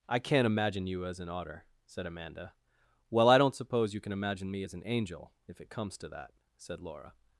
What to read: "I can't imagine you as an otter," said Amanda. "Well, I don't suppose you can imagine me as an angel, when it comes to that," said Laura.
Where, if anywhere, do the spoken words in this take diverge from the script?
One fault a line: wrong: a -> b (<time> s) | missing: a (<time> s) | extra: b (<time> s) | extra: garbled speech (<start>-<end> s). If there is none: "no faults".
wrong: when -> if (5.5 s)